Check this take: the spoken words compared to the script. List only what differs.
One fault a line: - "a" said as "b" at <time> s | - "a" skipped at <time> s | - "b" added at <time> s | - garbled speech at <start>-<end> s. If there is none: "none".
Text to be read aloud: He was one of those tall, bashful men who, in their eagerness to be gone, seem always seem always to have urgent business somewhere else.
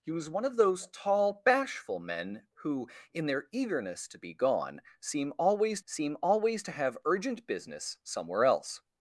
none